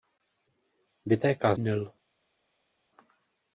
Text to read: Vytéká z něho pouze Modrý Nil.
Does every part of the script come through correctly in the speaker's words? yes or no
no